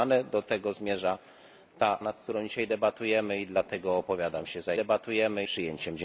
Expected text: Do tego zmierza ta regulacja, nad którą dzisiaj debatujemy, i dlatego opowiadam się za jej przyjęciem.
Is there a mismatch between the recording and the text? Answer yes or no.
yes